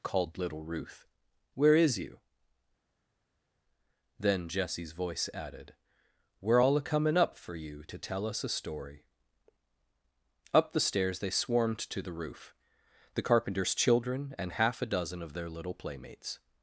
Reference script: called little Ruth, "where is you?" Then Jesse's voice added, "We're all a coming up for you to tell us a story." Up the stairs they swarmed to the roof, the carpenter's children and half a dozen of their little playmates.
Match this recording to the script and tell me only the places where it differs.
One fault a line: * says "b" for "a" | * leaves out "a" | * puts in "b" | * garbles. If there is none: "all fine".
all fine